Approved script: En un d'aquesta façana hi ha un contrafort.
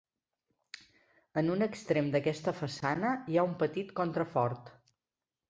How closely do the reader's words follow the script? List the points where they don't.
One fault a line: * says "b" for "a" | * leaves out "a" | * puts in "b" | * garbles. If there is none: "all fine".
* puts in "extrem"
* puts in "petit"